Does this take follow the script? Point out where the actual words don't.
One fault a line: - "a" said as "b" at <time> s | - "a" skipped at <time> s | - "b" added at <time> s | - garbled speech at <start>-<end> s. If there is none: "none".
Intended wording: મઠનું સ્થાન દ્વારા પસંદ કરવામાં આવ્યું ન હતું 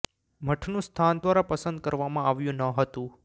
none